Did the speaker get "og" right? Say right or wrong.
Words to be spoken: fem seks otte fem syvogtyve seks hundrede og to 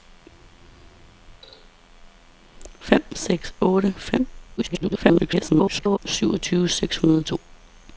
right